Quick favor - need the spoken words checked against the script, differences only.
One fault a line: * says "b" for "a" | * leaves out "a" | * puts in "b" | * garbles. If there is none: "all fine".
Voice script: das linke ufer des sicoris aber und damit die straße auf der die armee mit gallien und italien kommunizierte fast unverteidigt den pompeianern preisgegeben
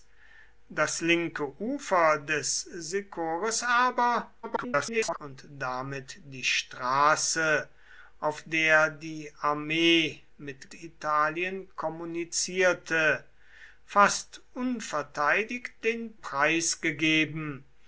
* garbles
* leaves out "gallien und"
* leaves out "pompeianern"